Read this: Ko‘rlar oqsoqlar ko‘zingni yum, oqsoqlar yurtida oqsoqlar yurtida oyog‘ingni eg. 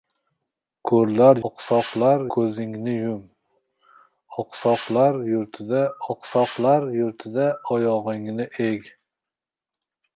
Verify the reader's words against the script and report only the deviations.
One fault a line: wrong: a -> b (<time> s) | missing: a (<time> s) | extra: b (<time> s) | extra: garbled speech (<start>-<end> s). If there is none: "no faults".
no faults